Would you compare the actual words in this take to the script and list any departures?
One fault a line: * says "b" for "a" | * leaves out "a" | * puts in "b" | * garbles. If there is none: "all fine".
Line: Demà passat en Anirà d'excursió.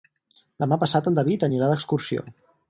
* puts in "David"